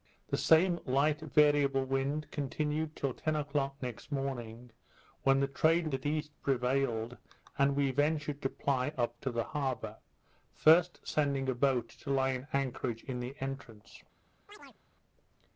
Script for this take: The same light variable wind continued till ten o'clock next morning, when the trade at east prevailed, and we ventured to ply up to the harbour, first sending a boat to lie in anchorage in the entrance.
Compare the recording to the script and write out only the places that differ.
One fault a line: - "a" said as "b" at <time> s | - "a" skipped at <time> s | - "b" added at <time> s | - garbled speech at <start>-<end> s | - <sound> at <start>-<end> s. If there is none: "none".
- chirp at 14.5-14.8 s